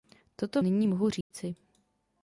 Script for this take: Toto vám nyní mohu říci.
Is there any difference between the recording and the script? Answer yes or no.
yes